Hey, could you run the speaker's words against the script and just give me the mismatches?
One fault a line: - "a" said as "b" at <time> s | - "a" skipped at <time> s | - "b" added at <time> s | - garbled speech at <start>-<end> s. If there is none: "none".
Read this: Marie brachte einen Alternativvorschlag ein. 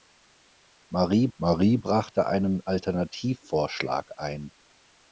- "marie" added at 1.4 s